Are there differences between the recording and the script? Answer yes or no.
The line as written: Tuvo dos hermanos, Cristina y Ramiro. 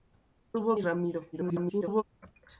yes